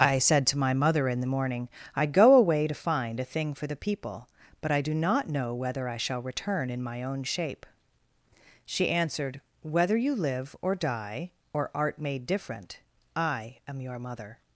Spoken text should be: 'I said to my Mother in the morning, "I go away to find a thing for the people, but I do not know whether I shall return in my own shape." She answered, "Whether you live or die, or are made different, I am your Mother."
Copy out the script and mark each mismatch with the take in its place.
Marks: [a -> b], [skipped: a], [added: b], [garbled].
'I said to my Mother in the morning, "I go away to find a thing for the people, but I do not know whether I shall return in my own shape." She answered, "Whether you live or die, or [are -> art] made different, I am your Mother."